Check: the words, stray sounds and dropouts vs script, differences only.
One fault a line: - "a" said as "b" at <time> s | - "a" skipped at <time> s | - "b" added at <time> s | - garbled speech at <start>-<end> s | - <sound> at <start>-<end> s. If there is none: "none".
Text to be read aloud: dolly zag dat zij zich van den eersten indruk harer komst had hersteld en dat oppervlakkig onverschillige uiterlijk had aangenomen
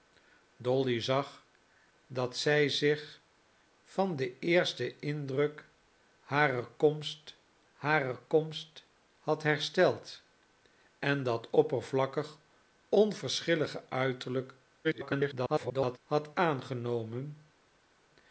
- "harer komst" added at 7.7 s
- garbled speech at 14.8-16.0 s